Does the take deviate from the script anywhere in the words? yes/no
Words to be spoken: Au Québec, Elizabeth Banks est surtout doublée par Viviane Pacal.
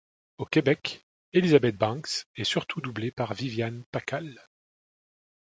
no